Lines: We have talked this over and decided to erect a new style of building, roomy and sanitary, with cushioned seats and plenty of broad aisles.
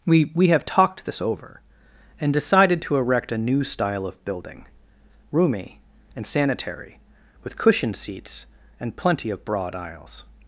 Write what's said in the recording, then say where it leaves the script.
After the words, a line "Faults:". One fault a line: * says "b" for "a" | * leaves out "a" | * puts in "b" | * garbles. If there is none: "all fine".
We we have talked this over and decided to erect a new style of building, roomy and sanitary, with cushioned seats and plenty of broad aisles.
Faults:
* puts in "we"